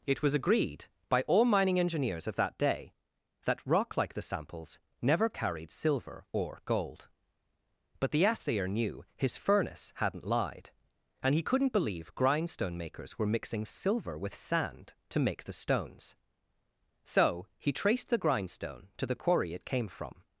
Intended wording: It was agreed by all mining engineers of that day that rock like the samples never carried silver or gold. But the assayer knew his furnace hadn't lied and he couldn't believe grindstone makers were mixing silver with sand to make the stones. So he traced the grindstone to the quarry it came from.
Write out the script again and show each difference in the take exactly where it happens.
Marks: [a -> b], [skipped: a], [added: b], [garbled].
It was agreed by all mining engineers of that day that rock like the samples never carried silver or gold. But the assayer knew his furnace hadn't lied and he couldn't believe grindstone makers were mixing silver with sand to make the stones. So he traced the grindstone to the quarry it came from.